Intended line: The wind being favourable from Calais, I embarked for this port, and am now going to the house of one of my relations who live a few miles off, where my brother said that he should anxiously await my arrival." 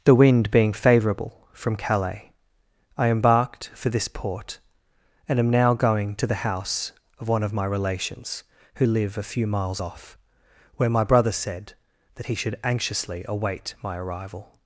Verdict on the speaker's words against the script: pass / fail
pass